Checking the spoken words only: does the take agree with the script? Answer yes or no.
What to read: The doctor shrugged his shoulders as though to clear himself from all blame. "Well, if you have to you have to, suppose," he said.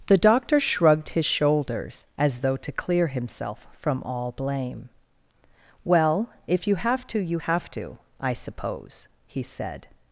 no